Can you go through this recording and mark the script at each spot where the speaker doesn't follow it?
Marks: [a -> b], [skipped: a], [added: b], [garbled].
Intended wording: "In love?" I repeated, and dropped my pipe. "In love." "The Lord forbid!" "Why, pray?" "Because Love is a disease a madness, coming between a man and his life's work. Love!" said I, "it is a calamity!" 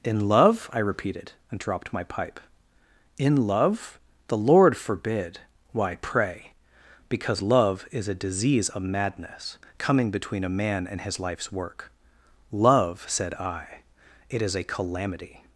"In love?" I repeated, and dropped my pipe. "In love." "The Lord forbid!" "Why, pray?" "Because Love is a disease [a -> of] madness, coming between a man and his life's work. Love!" said I, "it is a calamity!"